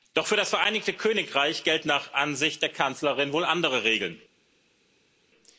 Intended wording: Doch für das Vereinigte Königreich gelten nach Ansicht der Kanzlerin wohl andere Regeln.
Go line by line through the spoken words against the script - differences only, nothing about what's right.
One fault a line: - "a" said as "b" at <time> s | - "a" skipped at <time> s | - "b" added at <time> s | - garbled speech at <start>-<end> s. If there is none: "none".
none